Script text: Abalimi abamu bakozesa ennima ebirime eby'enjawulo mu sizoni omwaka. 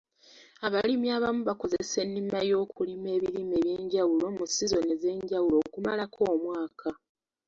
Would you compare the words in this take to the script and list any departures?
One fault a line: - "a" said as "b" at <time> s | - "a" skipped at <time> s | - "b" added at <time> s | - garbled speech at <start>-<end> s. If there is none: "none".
- "y'okulima" added at 2.5 s
- "ez'enjawulo okumalako" added at 4.9 s